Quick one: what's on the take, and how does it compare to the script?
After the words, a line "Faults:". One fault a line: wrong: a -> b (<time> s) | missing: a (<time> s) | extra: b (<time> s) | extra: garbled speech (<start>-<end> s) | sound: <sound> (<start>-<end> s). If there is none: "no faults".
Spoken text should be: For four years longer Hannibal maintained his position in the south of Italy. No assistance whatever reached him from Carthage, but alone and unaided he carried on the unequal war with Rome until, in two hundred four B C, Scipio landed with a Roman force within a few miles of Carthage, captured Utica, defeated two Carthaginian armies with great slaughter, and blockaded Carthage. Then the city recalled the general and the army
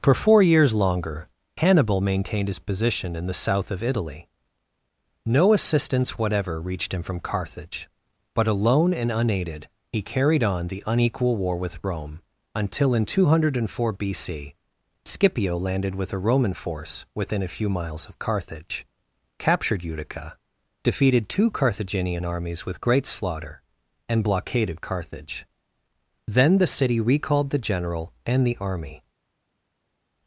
For four years longer Hannibal maintained his position in the south of Italy. No assistance whatever reached him from Carthage, but alone and unaided he carried on the unequal war with Rome until, in two hundred four B C, Scipio landed with a Roman force within a few miles of Carthage, captured Utica, defeated two Carthaginian armies with great slaughter, and blockaded Carthage. Then the city recalled the general and the army
Faults:
no faults